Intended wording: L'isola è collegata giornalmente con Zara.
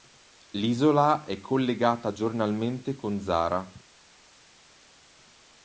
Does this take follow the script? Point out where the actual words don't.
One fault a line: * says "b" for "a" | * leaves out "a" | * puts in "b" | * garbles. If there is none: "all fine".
all fine